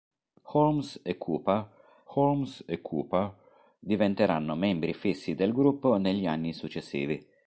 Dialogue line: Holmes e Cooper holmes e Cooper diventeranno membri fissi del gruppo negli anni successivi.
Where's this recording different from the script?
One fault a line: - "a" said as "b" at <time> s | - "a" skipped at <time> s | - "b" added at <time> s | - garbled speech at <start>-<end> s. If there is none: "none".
none